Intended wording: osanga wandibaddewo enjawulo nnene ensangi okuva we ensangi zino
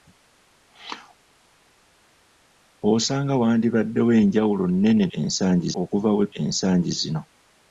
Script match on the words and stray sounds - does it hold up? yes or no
yes